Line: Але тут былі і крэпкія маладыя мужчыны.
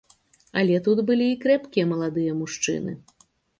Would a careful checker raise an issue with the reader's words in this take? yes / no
no